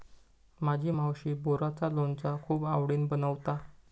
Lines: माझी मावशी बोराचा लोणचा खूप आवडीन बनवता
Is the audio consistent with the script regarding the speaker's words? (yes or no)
yes